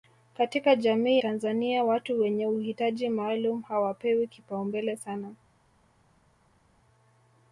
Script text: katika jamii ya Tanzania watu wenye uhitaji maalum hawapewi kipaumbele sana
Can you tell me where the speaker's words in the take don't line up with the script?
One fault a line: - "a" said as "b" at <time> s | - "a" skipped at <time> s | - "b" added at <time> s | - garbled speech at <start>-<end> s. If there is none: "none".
- "ya" skipped at 1.2 s